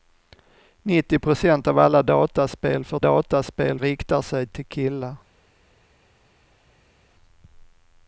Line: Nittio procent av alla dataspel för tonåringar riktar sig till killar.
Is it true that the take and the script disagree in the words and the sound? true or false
true